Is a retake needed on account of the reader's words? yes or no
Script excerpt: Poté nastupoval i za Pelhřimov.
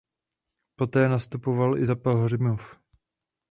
no